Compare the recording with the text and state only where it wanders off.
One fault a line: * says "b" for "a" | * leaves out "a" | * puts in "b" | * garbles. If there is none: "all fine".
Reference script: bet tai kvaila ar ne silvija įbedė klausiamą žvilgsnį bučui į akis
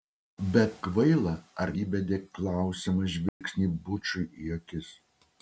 * leaves out "tai"
* leaves out "ne silvija"